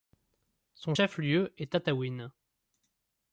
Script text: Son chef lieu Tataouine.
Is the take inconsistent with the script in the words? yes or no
yes